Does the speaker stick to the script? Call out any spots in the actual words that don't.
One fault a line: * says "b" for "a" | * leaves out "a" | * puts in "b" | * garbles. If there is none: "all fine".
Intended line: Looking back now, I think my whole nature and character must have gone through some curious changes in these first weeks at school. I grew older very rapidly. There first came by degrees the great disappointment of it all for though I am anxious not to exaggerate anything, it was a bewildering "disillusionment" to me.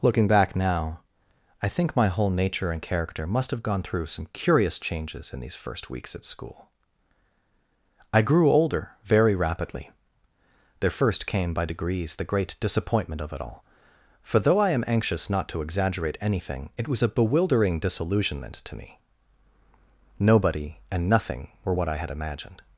* puts in "Nobody and nothing were what I had imagined"